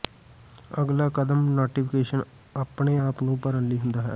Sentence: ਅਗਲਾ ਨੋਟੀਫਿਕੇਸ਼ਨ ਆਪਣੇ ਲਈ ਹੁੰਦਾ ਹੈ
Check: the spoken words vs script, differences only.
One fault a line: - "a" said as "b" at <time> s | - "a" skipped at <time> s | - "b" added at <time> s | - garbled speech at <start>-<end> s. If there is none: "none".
- "ਕਦਮ" added at 1.1 s
- "ਆਪ ਨੂੰ ਭਰਨ" added at 3.0 s